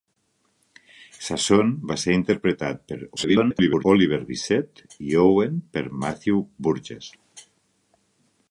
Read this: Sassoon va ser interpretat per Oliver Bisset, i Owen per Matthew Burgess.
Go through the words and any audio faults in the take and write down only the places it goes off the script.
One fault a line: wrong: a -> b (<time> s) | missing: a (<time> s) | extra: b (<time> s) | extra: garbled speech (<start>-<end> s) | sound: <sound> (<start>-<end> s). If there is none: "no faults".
extra: garbled speech (3.2-3.9 s)